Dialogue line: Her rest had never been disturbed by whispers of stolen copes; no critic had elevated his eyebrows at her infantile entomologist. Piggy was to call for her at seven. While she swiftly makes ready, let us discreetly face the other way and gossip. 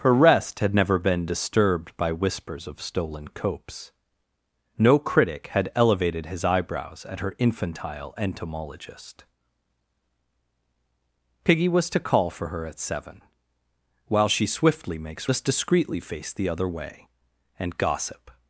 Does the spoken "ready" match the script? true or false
false